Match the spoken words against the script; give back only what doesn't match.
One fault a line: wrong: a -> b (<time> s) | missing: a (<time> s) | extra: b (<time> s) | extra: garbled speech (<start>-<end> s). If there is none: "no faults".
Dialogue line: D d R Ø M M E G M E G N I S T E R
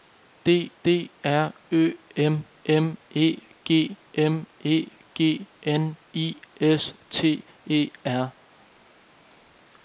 no faults